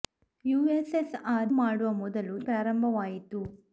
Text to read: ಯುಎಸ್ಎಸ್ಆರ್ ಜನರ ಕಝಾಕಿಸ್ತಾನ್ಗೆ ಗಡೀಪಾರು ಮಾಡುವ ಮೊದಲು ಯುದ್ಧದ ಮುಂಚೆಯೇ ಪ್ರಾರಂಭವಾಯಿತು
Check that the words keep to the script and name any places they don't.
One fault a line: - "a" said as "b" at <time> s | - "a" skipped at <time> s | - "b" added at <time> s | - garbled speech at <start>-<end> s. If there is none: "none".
- "ಜನರ ಕಝಾಕಿಸ್ತಾನ್ಗೆ ಗಡೀಪಾರು" skipped at 1.5 s
- "ಯುದ್ಧದ ಮುಂಚೆಯೇ" skipped at 2.4 s